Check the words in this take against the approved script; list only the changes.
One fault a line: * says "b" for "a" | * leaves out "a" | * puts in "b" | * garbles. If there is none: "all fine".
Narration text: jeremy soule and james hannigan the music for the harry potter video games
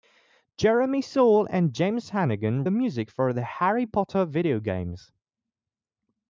all fine